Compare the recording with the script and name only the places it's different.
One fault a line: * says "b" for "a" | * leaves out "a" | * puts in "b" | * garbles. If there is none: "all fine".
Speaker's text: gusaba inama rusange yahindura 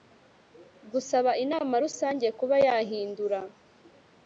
* puts in "kuba"